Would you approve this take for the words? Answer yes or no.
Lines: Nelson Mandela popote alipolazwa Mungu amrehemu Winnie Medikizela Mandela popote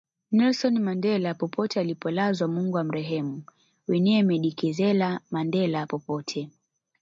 yes